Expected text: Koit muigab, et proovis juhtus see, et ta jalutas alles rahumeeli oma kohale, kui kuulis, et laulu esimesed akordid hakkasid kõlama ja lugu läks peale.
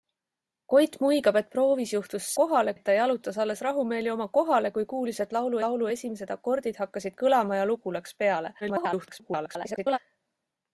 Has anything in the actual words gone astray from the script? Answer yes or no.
yes